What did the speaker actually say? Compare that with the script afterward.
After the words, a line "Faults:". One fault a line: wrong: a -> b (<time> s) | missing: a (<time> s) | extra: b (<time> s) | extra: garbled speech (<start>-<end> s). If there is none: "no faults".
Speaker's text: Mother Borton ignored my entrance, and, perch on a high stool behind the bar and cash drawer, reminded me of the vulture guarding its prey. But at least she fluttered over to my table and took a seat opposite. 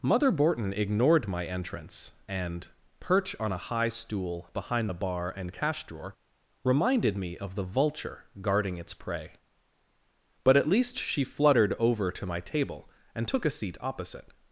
Mother Borton ignored my entrance, and, perch on a high stool behind the bar and cash drawer, reminded me of the vulture guarding its prey. But at least she fluttered over to my table and took a seat opposite.
Faults:
no faults